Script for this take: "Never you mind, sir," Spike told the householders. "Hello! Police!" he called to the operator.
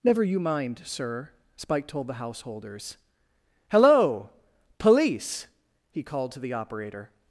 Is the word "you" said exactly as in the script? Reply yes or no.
yes